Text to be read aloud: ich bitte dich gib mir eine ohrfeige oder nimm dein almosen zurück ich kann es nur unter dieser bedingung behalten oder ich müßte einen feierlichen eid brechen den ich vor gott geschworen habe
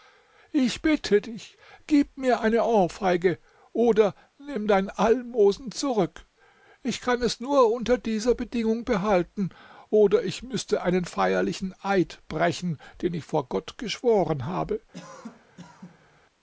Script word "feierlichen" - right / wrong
right